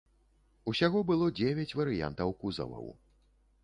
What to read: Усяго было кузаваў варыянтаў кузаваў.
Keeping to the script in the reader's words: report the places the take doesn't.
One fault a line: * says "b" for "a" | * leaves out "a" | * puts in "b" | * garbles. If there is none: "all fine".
* says "дзевяць" for "кузаваў"